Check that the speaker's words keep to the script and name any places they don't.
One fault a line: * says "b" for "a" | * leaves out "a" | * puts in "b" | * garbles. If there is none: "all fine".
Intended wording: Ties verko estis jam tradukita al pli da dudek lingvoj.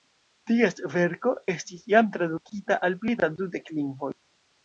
all fine